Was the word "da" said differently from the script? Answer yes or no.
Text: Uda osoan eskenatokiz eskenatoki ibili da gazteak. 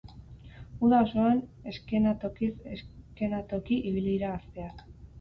yes